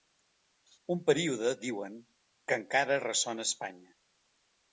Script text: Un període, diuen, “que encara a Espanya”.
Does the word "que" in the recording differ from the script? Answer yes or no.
no